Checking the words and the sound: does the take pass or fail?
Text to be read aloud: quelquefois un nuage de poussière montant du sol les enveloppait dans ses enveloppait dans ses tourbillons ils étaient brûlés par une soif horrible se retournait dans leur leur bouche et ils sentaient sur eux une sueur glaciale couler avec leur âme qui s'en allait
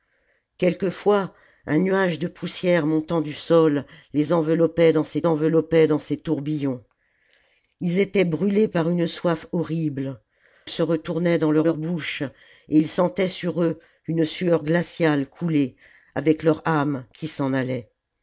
pass